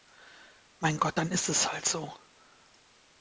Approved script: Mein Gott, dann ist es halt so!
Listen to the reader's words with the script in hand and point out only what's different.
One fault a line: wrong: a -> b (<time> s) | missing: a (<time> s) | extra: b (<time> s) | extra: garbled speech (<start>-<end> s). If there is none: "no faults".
no faults